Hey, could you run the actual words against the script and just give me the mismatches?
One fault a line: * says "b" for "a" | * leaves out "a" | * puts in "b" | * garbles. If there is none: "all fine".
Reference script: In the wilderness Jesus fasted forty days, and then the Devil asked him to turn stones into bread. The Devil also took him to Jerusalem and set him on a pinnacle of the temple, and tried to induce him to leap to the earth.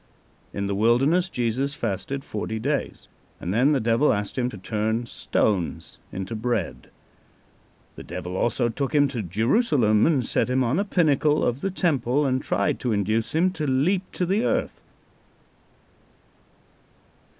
all fine